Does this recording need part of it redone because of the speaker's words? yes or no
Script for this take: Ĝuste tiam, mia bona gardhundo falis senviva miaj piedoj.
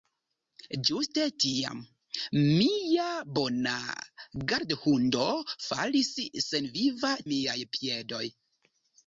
no